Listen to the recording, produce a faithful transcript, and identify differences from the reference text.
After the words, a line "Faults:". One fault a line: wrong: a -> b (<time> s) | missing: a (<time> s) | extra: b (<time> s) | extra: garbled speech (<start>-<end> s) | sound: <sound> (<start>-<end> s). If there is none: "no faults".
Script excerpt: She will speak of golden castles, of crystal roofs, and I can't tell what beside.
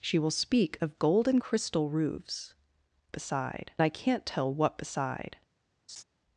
She will speak of golden crystal roofs, beside I can't tell what beside.
Faults:
missing: castles of (1.4 s)
wrong: and -> beside (3.1 s)
sound: laugh (5.9-6.0 s)